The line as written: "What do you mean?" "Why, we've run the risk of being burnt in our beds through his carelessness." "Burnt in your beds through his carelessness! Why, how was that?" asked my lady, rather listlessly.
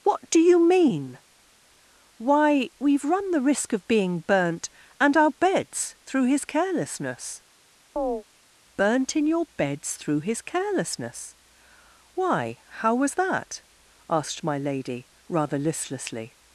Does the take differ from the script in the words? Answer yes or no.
yes